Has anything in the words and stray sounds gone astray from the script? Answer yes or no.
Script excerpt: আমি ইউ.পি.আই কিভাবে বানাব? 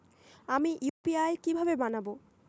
yes